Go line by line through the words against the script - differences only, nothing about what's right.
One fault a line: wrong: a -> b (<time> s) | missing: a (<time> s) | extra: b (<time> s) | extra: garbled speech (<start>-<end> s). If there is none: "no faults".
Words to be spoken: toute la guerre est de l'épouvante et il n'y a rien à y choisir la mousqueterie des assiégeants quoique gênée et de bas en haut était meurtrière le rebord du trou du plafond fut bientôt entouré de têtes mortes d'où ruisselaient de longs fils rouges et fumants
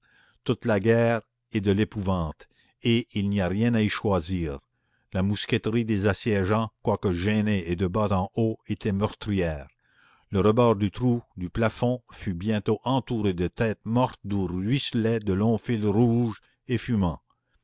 no faults